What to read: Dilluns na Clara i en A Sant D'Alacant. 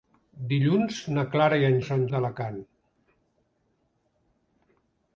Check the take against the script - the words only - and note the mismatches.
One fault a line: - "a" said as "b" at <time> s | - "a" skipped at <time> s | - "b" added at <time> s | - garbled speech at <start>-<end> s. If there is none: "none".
none